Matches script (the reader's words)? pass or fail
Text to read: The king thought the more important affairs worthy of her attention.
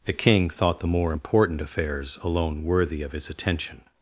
fail